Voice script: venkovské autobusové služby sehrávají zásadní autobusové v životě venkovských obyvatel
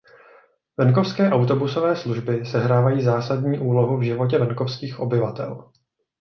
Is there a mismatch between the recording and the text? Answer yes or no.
yes